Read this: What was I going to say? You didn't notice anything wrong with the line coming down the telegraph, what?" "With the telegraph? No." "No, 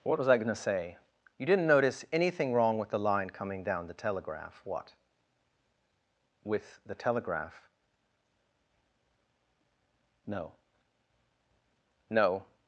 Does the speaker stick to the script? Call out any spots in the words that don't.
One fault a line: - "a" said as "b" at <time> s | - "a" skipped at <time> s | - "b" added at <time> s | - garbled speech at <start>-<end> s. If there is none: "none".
none